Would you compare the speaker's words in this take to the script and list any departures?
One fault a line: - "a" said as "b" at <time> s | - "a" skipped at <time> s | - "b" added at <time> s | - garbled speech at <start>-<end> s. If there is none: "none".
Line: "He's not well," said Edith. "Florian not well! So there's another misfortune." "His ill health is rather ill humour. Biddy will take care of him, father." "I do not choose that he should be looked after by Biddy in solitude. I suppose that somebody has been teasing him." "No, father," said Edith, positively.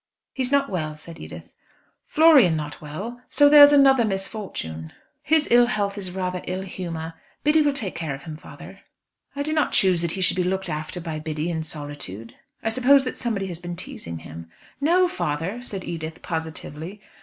none